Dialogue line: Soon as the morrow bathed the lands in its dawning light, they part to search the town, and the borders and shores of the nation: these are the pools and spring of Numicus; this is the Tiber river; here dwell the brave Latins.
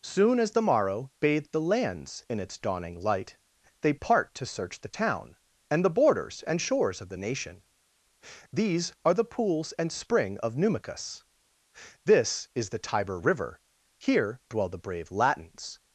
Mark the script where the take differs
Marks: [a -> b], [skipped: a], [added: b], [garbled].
Soon as the morrow bathed the lands in its dawning light, they part to search the town, and the borders and shores of the nation: these are the pools and spring of Numicus; this is the Tiber river; here dwell the brave Latins.